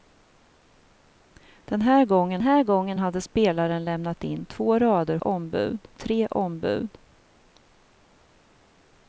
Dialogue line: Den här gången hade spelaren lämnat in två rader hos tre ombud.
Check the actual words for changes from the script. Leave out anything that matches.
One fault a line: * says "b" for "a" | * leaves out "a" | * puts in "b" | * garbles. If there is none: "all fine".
* puts in "här gången"
* says "ombud" for "hos"